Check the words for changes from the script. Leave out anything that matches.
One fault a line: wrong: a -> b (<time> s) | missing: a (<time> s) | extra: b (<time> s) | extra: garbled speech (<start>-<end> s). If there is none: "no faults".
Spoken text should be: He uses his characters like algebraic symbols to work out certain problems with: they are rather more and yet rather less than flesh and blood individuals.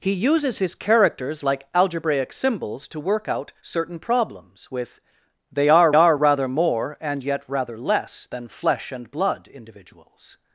extra: are (5.9 s)